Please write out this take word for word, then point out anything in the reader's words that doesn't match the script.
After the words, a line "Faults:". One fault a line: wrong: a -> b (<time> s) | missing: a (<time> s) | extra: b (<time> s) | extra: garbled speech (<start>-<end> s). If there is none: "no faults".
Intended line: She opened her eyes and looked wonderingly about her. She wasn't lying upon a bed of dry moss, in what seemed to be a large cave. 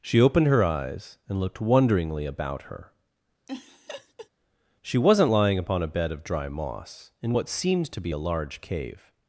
She opened her eyes and looked wonderingly about her. She wasn't lying upon a bed of dry moss, in what seemed to be a large cave.
Faults:
no faults